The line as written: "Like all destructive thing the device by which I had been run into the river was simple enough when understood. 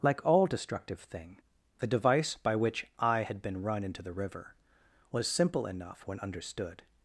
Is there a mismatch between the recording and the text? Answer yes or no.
no